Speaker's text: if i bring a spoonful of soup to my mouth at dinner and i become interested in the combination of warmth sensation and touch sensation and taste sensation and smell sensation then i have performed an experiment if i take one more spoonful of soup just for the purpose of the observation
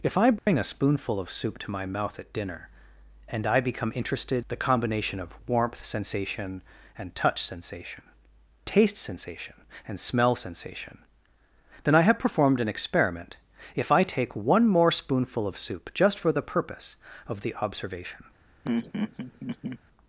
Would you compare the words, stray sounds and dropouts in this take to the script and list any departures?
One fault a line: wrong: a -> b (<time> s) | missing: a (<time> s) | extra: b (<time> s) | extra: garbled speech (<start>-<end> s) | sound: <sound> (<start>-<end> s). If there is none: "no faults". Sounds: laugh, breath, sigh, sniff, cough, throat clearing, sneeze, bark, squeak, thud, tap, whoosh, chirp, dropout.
sound: dropout (0.4-0.5 s)
missing: in (4.5 s)
missing: and (8.0 s)
sound: laugh (18.6-19.8 s)